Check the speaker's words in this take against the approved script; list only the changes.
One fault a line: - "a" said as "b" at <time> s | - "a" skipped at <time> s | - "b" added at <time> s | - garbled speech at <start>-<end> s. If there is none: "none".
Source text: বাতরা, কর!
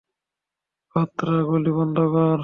- "গুলি বন্ধ" added at 1.5 s